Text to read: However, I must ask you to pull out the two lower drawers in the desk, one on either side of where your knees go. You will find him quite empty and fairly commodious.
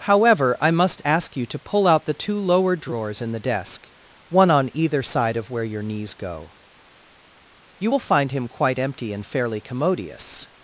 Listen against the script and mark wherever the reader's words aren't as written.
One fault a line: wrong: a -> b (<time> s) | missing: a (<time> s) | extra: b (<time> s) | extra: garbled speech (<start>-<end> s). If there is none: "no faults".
no faults